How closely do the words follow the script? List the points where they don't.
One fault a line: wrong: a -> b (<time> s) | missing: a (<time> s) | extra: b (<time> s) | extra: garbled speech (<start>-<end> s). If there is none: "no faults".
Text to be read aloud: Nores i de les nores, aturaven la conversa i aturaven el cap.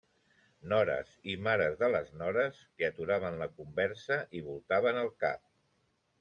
extra: mares (1.5 s)
extra: que (2.8 s)
wrong: aturaven -> voltaven (4.5 s)